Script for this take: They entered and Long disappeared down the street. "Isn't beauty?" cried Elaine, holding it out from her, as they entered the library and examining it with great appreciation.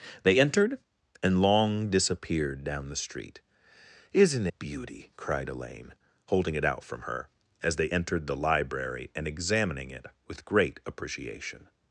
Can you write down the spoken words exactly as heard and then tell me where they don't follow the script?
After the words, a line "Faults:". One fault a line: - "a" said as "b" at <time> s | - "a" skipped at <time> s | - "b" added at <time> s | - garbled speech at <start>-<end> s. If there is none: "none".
They entered and Long disappeared down the street. "Isn't beauty?" cried Elaine, holding it out from her, as they entered the library and examining it with great appreciation.
Faults:
none